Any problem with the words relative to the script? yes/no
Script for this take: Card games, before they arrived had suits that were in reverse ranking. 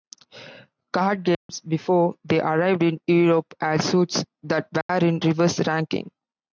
yes